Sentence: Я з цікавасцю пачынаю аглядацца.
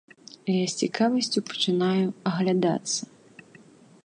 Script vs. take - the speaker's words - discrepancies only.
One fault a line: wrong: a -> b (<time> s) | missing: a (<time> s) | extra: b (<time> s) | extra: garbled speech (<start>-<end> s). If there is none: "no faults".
no faults